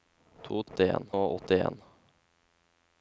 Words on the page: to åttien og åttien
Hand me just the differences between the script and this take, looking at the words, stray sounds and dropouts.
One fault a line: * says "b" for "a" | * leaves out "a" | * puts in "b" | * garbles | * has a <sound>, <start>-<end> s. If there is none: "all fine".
all fine